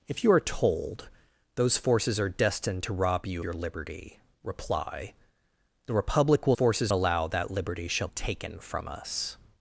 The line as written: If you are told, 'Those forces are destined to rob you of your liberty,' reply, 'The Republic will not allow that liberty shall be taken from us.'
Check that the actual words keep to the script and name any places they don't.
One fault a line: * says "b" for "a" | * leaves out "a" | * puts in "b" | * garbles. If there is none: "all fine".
* leaves out "of"
* says "forces" for "not"
* leaves out "be"